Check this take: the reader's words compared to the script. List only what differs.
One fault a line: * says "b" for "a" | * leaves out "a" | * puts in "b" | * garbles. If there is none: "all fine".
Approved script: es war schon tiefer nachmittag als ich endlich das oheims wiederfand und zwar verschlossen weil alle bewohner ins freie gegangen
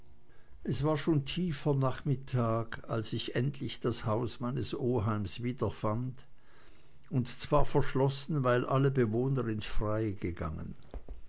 * puts in "haus meines"